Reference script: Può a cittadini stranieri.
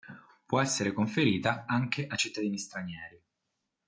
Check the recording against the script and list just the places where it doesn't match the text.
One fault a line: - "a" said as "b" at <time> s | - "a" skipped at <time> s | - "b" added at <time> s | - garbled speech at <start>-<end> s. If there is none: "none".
- "essere conferita anche" added at 0.6 s